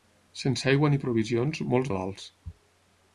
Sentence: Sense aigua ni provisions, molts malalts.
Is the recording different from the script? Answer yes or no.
no